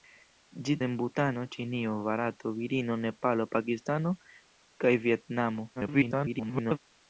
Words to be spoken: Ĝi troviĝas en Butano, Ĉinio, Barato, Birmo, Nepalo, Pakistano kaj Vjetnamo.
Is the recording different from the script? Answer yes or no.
yes